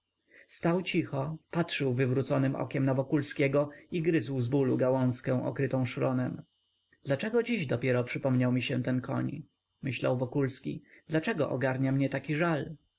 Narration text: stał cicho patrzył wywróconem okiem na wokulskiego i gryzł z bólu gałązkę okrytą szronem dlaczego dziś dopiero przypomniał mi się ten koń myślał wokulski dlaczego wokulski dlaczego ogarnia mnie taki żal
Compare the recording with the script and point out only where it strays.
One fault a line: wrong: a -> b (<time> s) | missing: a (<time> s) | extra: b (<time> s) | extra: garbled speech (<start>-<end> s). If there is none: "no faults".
missing: wokulski dlaczego (11.5 s)